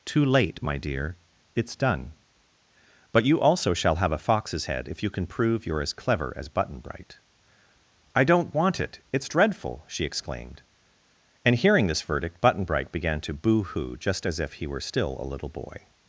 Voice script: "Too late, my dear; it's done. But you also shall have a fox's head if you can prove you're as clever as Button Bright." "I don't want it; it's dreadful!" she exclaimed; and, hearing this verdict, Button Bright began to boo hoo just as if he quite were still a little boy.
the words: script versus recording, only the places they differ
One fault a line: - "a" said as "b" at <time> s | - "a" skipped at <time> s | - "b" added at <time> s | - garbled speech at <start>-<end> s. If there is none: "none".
- "quite" skipped at 14.7 s